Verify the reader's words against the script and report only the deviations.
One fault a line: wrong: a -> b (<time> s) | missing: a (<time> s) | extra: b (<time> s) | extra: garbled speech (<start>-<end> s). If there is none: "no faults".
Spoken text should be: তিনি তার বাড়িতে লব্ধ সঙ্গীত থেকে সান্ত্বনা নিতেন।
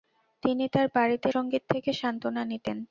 missing: লব্ধ (1.3 s)